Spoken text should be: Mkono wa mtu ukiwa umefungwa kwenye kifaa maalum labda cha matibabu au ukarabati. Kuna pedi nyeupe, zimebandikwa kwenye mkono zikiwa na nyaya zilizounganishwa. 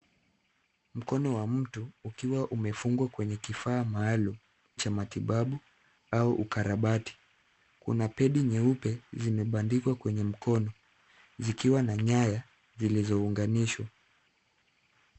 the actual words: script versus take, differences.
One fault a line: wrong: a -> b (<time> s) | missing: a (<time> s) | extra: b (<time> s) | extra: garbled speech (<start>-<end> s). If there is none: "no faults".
missing: labda (4.3 s)